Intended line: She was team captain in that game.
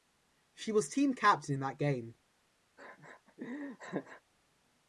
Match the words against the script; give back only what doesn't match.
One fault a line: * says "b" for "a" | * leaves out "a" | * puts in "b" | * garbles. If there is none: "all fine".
all fine